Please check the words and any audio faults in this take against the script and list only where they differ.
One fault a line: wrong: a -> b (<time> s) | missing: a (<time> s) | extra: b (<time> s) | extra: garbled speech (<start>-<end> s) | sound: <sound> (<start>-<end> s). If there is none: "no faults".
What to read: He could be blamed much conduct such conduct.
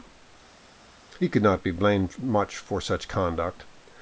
extra: not (1.4 s)
wrong: conduct -> for (2.5 s)